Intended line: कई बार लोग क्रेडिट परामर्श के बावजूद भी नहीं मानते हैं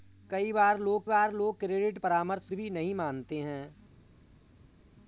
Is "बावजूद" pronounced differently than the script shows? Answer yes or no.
yes